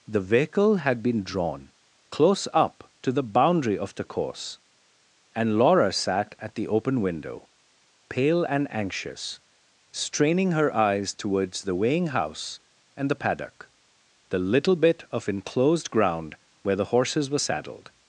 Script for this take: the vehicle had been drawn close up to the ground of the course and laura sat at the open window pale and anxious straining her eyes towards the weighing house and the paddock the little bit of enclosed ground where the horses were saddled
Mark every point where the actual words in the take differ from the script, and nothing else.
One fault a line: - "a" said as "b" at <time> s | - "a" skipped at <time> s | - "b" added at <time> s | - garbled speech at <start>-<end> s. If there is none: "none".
- "ground" said as "boundary" at 3.2 s